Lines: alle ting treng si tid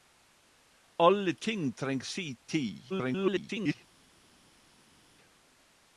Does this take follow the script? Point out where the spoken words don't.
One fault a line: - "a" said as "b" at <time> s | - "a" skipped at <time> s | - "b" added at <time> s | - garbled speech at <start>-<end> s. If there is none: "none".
- garbled speech at 2.9-3.8 s